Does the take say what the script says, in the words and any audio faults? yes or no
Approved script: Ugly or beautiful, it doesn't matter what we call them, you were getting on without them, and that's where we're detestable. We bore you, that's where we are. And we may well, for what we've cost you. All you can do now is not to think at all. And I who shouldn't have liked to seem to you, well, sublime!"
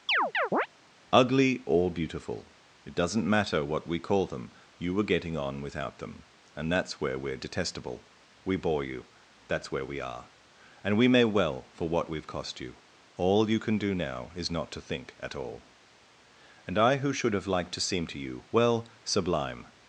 no